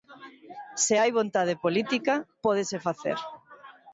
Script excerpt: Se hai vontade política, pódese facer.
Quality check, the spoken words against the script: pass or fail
pass